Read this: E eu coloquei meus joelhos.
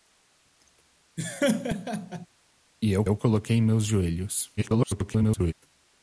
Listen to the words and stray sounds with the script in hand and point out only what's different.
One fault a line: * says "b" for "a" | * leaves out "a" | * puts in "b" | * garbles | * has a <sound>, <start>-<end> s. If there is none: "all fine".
* has a laugh, 1.2-2.3 s
* puts in "eu"
* garbles